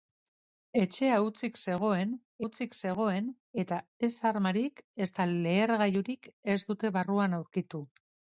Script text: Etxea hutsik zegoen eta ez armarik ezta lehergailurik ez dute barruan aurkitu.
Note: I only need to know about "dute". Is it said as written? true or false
true